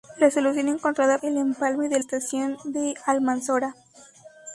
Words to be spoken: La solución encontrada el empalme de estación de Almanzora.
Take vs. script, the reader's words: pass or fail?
pass